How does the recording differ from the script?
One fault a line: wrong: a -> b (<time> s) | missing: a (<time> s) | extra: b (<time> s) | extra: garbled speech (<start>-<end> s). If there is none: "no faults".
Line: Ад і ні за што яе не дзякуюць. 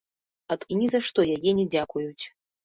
no faults